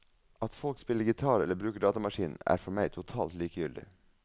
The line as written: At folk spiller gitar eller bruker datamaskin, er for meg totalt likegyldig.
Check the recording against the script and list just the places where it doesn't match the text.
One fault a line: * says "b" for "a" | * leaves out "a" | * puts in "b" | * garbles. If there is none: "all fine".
all fine